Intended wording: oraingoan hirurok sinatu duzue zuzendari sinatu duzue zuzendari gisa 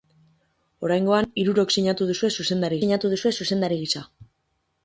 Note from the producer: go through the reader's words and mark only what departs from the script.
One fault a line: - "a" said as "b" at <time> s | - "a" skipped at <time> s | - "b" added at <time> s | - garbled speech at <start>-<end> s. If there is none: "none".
none